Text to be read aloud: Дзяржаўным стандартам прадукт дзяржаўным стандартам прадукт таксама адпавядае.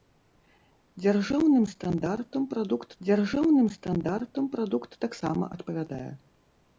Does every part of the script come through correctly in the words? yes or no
yes